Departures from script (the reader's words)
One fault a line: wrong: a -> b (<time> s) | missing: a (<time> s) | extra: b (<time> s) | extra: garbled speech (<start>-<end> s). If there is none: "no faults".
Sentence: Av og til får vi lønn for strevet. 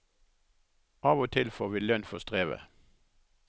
no faults